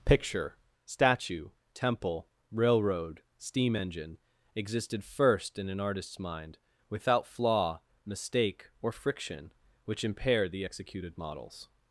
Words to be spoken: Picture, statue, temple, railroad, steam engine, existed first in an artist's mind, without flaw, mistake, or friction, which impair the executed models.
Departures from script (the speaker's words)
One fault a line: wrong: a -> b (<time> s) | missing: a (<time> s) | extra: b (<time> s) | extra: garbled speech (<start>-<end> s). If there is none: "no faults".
no faults